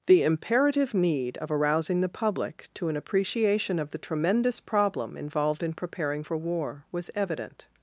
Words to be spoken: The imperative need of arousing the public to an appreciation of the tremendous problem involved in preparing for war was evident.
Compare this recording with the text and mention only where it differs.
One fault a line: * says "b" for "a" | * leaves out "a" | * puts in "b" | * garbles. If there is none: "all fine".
all fine